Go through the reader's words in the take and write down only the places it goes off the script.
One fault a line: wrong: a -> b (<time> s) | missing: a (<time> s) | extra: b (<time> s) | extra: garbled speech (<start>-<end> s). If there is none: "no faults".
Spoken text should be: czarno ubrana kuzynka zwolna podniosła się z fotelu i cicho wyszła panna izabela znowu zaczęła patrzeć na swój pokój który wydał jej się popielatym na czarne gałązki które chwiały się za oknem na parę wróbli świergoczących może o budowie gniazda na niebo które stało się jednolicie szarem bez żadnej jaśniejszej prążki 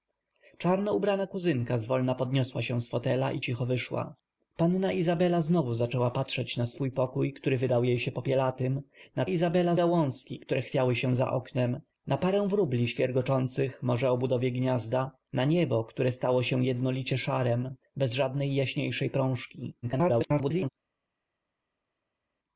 wrong: czarne -> izabela (9.3 s)
extra: garbled speech (19.8-20.7 s)